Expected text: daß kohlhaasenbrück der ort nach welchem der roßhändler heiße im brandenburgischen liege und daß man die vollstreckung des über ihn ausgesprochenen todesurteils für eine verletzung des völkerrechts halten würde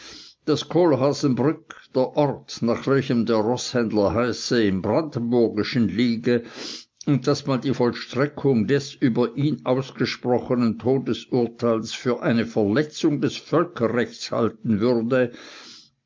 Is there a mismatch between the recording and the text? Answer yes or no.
no